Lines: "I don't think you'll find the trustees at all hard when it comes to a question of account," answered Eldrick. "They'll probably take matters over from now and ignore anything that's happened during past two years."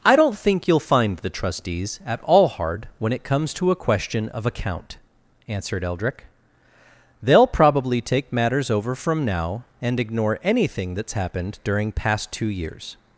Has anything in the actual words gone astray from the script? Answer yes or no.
no